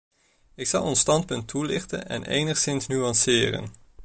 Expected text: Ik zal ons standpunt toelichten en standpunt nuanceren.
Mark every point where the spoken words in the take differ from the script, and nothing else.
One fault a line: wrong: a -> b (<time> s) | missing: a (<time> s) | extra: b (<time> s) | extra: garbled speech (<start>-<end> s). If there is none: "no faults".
wrong: standpunt -> enigszins (2.2 s)